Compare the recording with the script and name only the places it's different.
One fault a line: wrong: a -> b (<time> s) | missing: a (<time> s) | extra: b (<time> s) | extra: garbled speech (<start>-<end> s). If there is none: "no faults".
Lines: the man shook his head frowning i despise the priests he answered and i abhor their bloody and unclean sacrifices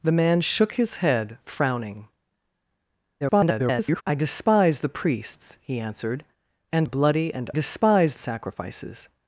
extra: garbled speech (3.2-4.0 s)
missing: i abhor their (6.9 s)
wrong: unclean -> despise (7.5 s)